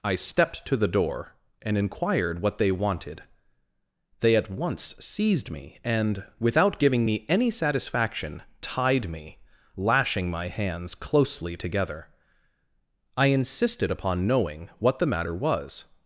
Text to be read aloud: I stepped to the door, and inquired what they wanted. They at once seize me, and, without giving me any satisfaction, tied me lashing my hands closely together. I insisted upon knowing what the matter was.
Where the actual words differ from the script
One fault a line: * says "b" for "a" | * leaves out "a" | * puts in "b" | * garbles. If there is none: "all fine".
* says "seized" for "seize"